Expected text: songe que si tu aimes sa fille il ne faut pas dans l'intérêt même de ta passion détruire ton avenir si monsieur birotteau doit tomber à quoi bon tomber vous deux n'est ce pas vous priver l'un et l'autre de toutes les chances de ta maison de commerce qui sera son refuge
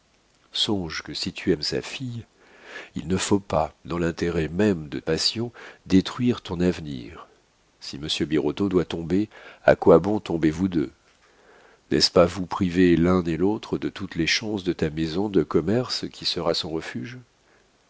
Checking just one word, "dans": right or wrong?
right